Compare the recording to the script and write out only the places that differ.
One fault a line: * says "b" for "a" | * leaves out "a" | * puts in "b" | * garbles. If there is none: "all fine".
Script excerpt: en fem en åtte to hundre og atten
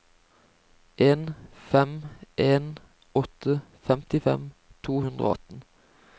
* puts in "femtifem"